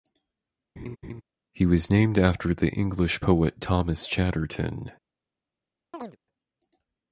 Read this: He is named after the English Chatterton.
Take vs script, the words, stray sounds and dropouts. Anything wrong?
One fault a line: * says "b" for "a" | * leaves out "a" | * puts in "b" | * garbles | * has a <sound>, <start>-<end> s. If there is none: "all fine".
* has a laugh, 0.8-1.2 s
* says "was" for "is"
* puts in "poet Thomas"
* has a chirp, 5.9-6.2 s